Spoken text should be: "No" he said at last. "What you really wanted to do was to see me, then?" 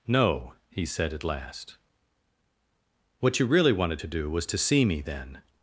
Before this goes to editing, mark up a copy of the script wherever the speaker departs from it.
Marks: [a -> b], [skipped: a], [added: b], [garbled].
"No" he said at last. "What you really wanted to do was to see me, then?"